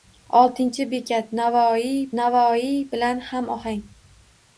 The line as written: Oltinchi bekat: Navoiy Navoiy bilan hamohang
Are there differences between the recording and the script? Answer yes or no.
no